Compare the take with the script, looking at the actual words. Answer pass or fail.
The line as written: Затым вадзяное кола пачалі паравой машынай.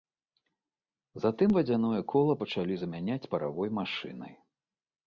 fail